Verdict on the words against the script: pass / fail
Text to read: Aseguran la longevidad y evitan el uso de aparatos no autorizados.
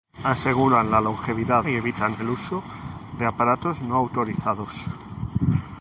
pass